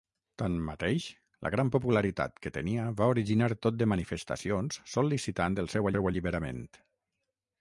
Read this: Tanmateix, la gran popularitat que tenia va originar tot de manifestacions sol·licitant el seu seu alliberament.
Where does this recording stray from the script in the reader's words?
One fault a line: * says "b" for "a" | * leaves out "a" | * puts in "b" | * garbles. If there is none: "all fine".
all fine